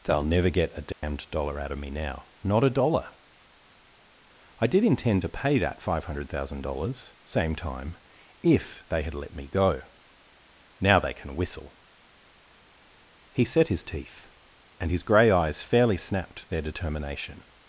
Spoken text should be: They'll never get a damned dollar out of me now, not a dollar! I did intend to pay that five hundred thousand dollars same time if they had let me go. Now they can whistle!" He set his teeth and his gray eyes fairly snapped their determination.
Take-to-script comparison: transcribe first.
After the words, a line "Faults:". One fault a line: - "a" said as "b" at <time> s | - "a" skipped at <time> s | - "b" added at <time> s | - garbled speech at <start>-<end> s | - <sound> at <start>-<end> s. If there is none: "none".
They'll never get a damned dollar out of me now, not a dollar! I did intend to pay that five hundred thousand dollars same time if they had let me go. Now they can whistle!" He set his teeth and his gray eyes fairly snapped their determination.
Faults:
- dropout at 0.9-1.0 s